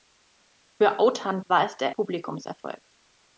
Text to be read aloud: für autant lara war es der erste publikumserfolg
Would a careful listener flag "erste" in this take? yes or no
yes